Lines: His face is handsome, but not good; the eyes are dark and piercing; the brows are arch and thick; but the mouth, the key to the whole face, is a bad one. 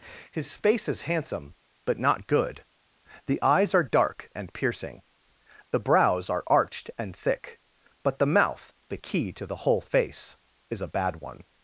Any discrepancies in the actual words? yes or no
yes